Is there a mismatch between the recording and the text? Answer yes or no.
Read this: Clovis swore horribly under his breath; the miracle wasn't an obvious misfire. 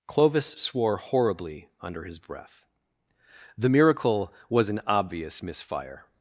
yes